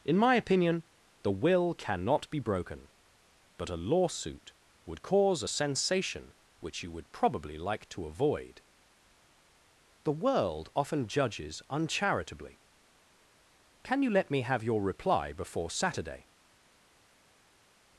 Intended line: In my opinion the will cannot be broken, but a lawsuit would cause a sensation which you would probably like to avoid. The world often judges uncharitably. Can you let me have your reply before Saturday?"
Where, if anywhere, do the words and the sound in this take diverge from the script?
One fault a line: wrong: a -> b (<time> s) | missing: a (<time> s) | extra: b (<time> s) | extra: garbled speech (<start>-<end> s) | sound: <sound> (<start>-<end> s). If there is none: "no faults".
no faults